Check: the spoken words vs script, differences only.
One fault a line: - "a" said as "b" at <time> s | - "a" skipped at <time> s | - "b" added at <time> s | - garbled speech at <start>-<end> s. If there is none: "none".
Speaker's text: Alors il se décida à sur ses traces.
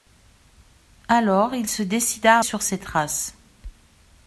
none